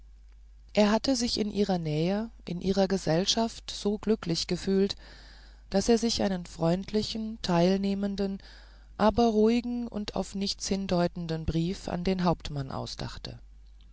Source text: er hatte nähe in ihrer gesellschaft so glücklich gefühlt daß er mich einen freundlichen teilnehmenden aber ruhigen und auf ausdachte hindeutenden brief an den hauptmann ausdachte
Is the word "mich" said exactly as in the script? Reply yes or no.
no